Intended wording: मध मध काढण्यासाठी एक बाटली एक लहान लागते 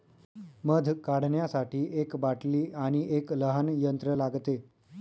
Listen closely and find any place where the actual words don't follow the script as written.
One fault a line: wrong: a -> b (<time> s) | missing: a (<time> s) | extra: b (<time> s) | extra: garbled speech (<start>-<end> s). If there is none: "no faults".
missing: मध (0.9 s)
extra: आणि (2.8 s)
extra: यंत्र (3.8 s)